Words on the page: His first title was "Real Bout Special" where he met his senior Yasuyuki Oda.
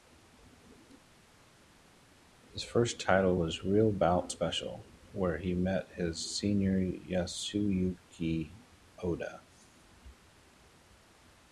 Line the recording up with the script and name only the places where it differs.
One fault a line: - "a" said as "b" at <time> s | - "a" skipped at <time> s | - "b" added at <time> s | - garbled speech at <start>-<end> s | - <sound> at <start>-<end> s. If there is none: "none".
none